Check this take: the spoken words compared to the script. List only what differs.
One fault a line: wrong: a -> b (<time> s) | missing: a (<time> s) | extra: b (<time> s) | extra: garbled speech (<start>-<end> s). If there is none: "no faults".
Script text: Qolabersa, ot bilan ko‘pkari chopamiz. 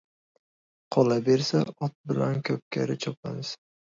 no faults